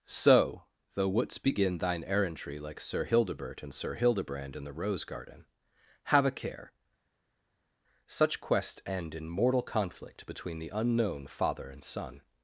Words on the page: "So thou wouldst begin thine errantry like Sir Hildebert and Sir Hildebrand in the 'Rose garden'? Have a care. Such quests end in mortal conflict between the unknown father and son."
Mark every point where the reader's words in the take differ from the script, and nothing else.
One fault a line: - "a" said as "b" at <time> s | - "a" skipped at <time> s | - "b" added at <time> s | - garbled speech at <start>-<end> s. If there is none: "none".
- "thou" said as "though" at 0.9 s